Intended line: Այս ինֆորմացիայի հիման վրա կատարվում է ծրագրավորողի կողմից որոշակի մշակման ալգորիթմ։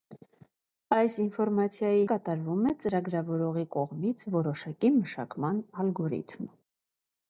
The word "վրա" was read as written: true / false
false